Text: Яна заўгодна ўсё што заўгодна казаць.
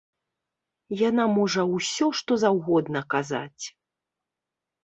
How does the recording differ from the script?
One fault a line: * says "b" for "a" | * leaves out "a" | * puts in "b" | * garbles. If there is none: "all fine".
* says "можа" for "заўгодна"